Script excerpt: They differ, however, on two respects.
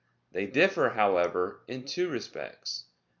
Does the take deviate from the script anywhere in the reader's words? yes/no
yes